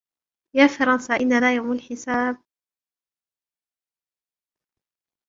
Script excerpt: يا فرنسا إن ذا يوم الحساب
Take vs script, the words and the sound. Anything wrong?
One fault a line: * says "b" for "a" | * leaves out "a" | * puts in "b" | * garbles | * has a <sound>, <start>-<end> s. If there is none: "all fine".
all fine